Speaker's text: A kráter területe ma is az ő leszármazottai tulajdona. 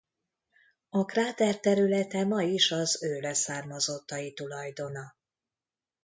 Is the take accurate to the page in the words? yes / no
yes